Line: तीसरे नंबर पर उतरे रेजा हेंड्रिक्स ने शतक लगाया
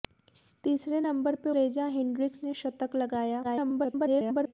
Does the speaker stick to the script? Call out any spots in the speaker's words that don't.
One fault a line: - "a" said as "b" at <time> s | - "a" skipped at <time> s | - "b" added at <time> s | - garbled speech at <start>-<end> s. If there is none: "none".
- "उतरे" skipped at 1.5 s
- garbled speech at 3.4-4.5 s